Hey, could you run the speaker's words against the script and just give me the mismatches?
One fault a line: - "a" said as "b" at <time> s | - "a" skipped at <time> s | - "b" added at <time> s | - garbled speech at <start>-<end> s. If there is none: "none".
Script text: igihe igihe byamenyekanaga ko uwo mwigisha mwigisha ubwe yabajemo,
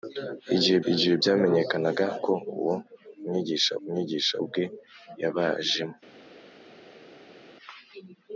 none